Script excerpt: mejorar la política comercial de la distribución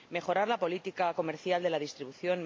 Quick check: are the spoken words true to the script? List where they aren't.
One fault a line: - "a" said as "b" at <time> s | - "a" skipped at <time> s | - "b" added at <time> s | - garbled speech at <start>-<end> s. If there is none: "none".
none